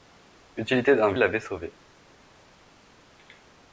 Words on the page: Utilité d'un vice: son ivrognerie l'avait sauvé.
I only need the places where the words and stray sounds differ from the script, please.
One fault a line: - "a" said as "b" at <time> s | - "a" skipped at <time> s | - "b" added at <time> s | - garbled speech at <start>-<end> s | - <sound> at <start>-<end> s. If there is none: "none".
- "vice son ivrognerie" skipped at 1.1 s